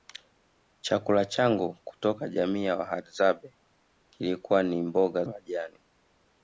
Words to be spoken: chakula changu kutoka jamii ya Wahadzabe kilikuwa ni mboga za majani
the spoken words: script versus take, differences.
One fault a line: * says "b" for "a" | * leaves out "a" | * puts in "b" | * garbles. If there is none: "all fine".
* leaves out "za"